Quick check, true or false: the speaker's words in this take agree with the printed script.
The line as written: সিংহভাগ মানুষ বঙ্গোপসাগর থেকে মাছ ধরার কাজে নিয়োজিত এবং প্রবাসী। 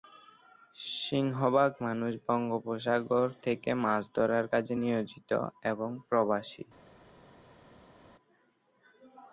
true